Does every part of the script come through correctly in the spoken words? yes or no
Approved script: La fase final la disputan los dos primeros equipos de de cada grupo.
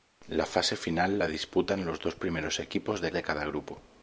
yes